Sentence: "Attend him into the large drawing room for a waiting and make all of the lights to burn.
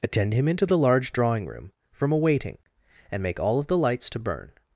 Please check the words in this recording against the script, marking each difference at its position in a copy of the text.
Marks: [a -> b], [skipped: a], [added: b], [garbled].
"Attend him into the large drawing room [for -> from] a waiting and make all of the lights to burn.